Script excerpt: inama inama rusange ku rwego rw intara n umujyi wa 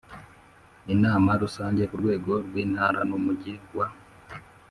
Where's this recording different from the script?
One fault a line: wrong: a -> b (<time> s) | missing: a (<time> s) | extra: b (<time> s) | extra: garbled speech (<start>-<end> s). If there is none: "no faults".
missing: inama (1.3 s)